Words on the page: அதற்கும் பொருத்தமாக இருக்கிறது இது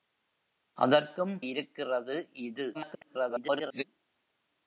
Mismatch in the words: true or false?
true